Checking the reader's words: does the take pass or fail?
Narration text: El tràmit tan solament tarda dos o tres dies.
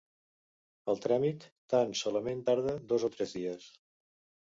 pass